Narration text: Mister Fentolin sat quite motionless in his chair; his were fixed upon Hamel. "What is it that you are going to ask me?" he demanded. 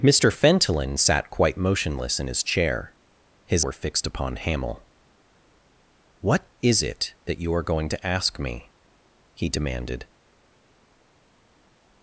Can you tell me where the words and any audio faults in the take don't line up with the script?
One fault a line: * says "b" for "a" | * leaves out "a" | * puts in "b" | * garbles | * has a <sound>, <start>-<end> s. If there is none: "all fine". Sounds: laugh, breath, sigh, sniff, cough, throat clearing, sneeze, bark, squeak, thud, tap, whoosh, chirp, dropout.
all fine